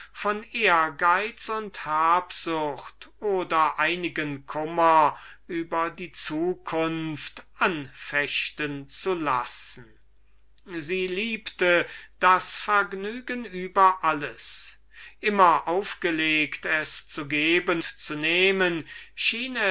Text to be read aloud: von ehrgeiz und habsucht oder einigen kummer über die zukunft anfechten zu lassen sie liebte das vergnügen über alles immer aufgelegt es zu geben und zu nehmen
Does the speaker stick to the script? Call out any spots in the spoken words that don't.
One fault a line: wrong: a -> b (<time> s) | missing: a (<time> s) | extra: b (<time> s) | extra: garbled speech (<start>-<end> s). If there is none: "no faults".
missing: und (17.8 s)